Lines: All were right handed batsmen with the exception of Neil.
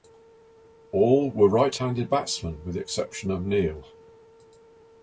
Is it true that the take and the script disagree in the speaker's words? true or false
false